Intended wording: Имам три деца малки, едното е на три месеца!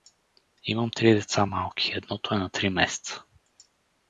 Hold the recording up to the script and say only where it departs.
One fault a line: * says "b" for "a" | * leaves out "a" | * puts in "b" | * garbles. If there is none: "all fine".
all fine